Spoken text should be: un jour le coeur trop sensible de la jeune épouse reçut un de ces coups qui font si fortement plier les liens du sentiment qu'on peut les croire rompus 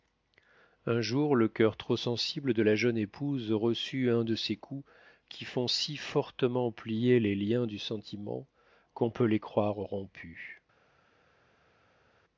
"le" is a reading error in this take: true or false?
false